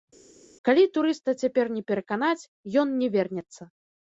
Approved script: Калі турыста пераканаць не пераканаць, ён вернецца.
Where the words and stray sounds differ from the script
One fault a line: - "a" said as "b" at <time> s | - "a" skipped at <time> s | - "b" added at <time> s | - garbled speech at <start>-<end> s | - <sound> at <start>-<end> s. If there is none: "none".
- "пераканаць" said as "цяпер" at 1.4 s
- "не" added at 3.0 s